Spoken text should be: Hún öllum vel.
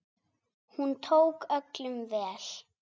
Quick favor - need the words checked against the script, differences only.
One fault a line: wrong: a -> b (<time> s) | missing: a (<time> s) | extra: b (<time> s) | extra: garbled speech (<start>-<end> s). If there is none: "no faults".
extra: tók (1.0 s)